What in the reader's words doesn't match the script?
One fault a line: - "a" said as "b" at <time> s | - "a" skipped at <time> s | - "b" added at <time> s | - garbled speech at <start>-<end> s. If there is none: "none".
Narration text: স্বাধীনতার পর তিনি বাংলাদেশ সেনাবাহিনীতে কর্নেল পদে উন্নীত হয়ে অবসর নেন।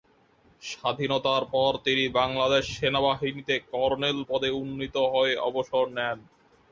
none